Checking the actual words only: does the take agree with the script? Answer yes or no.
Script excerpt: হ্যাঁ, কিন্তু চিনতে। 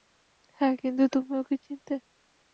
no